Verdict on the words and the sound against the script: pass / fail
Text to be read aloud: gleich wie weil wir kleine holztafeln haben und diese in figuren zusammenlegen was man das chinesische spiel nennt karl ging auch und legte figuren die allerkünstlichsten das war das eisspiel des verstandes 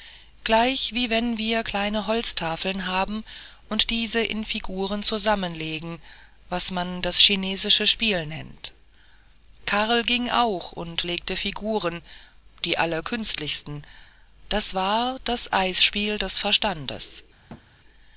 fail